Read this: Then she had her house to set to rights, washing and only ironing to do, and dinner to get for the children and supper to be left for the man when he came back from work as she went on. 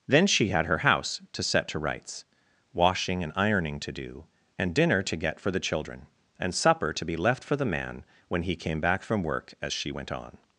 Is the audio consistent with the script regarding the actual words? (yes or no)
no